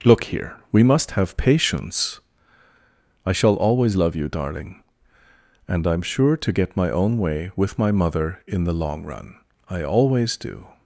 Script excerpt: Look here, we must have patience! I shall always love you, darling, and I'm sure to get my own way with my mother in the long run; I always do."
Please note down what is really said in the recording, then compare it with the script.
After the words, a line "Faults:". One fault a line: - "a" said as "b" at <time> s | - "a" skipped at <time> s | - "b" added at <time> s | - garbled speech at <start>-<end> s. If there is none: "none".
Look here, we must have patience! I shall always love you, darling, and I'm sure to get my own way with my mother in the long run; I always do."
Faults:
none